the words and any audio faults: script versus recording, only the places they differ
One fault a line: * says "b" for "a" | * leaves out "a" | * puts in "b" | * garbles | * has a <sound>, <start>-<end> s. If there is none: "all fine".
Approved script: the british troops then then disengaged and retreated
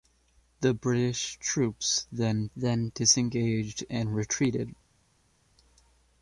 all fine